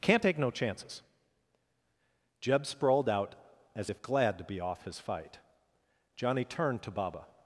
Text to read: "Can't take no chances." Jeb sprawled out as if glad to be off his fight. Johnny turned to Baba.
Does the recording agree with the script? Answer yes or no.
yes